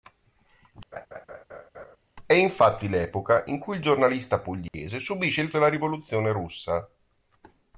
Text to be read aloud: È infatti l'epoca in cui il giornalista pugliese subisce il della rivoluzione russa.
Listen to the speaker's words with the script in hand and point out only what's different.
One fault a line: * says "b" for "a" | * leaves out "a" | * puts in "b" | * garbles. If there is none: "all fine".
all fine